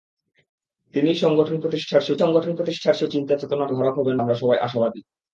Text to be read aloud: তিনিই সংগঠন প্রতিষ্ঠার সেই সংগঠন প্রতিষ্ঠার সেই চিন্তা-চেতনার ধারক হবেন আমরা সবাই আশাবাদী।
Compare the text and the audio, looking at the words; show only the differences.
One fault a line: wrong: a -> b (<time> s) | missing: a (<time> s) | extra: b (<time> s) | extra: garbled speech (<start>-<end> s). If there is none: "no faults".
no faults